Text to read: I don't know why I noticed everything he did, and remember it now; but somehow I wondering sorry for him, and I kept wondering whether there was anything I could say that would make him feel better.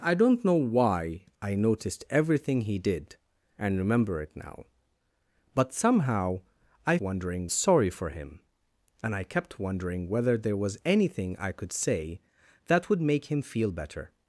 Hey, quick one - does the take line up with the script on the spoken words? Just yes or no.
yes